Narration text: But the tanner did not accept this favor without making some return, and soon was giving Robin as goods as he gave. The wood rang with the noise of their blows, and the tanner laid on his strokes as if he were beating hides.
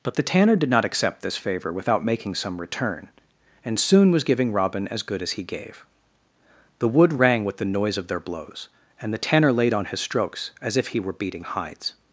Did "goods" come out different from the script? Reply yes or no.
yes